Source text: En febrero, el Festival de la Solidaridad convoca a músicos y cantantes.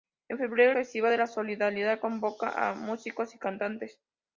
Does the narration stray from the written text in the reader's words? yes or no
yes